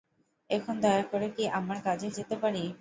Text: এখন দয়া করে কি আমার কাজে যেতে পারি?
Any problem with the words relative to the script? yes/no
no